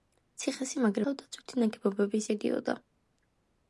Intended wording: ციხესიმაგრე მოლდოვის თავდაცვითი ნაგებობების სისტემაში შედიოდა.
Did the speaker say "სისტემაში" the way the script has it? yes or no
no